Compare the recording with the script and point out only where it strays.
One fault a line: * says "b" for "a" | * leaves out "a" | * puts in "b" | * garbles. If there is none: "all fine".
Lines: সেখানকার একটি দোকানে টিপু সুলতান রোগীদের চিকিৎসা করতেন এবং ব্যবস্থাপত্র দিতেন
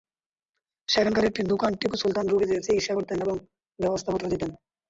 all fine